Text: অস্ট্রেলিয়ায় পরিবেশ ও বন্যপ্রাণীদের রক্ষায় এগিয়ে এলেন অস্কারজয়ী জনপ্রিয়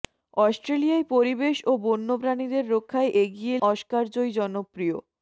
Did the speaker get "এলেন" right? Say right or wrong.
wrong